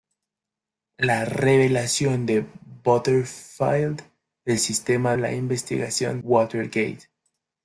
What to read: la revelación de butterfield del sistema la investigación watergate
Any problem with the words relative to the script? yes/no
no